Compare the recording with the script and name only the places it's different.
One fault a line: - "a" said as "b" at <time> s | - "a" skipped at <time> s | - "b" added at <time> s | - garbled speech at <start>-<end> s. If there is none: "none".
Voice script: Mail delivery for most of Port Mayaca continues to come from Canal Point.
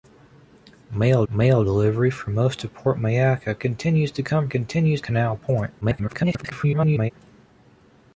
- "mail" added at 1.3 s
- "from" said as "continues" at 4.5 s
- garbled speech at 5.8-7.1 s